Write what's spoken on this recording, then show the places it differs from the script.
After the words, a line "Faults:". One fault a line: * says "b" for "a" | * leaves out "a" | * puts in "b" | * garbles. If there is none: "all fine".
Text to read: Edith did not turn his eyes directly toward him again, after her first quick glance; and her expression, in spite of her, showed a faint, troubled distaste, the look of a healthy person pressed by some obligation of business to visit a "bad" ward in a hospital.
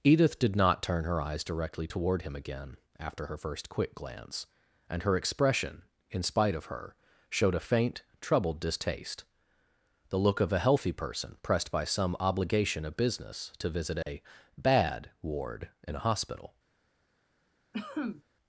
Edith did not turn her eyes directly toward him again, after her first quick glance; and her expression, in spite of her, showed a faint, troubled distaste, the look of a healthy person pressed by some obligation of business to visit a "bad" ward in a hospital.
Faults:
* says "her" for "his"